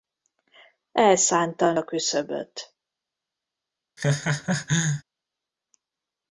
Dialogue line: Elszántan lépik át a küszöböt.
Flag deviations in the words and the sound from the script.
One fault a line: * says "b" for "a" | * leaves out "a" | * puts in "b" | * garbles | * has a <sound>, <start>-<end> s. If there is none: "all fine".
* leaves out "lépik át"
* has a laugh, 4.0-5.0 s